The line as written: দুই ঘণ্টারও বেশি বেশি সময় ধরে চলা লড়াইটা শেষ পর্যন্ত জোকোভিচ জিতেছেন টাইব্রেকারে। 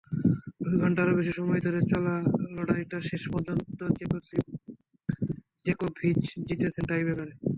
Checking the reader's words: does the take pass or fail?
fail